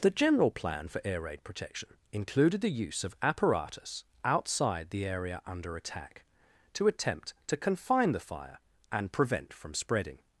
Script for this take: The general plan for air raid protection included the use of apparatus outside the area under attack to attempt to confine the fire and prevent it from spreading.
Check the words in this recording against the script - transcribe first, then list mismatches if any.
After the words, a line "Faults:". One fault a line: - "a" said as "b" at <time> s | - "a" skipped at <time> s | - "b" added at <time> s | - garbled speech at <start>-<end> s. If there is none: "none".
The general plan for air raid protection included the use of apparatus outside the area under attack to attempt to confine the fire and prevent from spreading.
Faults:
- "it" skipped at 9.5 s